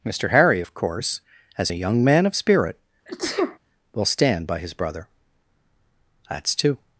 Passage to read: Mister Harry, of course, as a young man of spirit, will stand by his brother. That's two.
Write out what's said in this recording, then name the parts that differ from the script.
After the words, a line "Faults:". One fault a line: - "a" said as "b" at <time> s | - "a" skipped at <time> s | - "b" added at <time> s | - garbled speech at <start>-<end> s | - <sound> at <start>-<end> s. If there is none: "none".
Mister Harry, of course, as a young man of spirit, will stand by his brother. That's two.
Faults:
- sneeze at 3.1-3.6 s